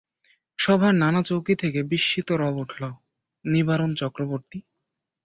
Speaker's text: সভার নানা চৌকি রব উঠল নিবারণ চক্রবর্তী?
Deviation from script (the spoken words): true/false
true